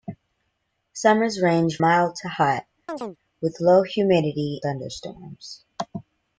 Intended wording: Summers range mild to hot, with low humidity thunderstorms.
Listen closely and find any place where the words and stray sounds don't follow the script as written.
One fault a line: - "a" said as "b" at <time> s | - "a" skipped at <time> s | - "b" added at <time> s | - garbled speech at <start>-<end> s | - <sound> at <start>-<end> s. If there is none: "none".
- chirp at 2.9-3.2 s